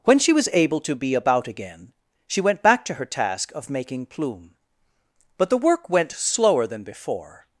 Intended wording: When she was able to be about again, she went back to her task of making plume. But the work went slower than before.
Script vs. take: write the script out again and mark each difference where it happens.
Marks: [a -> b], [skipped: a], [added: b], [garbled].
When she was able to be about again, she went back to her task of making plume. But the work went slower than before.